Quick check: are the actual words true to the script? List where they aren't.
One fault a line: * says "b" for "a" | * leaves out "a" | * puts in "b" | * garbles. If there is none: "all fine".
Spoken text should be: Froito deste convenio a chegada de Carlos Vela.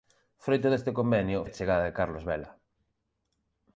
all fine